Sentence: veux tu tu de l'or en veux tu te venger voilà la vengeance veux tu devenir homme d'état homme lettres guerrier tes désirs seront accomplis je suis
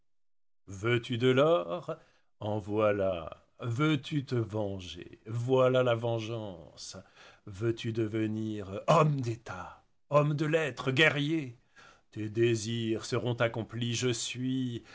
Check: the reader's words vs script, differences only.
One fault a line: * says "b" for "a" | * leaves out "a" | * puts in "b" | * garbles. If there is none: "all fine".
* leaves out "tu"
* puts in "voilà"
* puts in "de"